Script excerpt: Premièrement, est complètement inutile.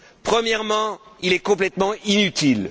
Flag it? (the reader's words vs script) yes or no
yes